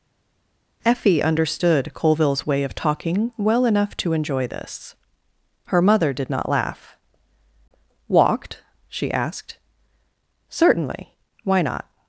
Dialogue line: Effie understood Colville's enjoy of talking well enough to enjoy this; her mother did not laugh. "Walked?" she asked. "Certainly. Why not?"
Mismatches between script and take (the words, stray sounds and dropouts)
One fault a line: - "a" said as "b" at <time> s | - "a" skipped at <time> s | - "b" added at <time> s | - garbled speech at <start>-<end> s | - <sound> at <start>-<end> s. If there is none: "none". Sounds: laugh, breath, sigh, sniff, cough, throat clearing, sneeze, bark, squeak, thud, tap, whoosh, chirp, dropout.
- "enjoy" said as "way" at 2.5 s